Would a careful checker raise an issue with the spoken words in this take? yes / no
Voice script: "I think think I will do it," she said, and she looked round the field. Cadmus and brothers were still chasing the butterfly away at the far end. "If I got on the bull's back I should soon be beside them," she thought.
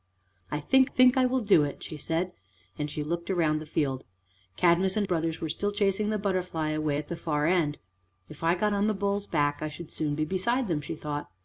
no